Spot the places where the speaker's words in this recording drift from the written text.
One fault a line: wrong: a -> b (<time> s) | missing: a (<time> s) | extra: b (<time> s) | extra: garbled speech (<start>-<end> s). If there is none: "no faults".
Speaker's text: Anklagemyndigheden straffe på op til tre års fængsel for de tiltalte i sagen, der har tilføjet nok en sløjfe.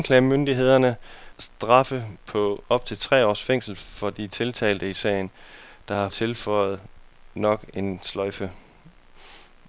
no faults